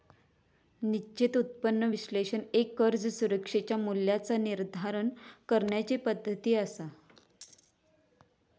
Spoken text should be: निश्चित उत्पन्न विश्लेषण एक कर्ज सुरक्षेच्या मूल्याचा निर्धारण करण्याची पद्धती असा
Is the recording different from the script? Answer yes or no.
no